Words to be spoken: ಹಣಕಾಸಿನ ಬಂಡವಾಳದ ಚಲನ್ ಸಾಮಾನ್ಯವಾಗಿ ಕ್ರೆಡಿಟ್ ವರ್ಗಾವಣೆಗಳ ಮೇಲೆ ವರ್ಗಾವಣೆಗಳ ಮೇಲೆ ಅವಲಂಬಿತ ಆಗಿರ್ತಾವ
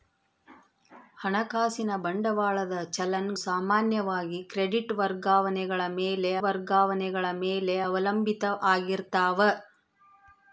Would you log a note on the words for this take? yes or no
no